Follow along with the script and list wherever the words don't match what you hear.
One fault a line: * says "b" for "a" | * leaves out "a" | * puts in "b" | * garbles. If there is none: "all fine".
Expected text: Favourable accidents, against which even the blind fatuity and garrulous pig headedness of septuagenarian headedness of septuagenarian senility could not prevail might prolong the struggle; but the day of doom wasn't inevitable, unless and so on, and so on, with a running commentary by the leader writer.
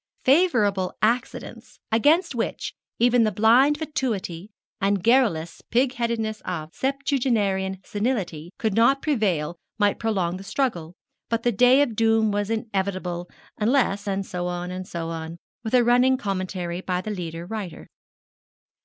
* leaves out "headedness of septuagenarian"
* says "was" for "wasn't"